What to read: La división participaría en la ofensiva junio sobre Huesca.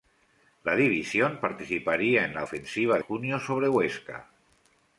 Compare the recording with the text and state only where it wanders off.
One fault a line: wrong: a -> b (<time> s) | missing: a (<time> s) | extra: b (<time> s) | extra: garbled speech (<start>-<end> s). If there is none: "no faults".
no faults